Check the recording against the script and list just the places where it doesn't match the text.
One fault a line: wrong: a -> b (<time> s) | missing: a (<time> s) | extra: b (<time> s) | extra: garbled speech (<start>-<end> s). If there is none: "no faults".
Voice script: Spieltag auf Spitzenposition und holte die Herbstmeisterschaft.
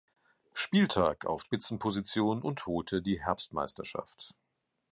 no faults